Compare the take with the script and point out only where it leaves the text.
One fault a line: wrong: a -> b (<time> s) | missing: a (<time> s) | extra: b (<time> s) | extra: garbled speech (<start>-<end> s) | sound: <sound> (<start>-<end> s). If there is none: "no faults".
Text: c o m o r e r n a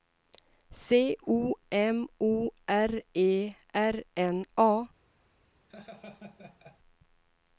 sound: laugh (5.7-6.8 s)